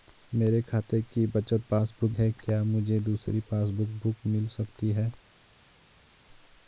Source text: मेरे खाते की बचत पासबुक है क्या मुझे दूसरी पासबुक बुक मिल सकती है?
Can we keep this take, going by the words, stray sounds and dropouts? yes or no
yes